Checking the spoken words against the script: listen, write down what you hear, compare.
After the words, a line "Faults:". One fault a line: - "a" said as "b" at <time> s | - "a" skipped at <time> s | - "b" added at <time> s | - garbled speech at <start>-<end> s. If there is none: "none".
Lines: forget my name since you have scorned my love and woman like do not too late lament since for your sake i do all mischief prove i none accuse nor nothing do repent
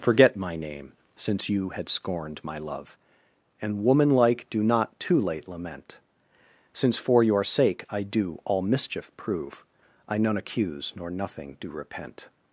forget my name since you had scorned my love and woman like do not too late lament since for your sake i do all mischief prove i none accuse nor nothing do repent
Faults:
- "have" said as "had" at 1.7 s